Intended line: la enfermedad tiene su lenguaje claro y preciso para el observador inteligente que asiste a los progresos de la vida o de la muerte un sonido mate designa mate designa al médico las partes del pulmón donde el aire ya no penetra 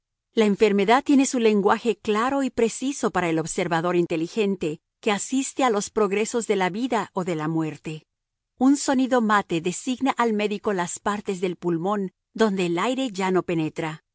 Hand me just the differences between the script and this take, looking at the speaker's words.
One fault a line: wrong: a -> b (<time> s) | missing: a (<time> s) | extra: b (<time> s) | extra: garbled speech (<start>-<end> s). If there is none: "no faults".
missing: mate designa (10.1 s)